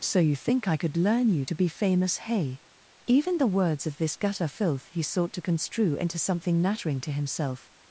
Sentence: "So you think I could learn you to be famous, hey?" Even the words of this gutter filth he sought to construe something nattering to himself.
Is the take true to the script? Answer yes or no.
no